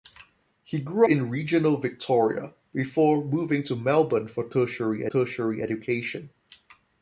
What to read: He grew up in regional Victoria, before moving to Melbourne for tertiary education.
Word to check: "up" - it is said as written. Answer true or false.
false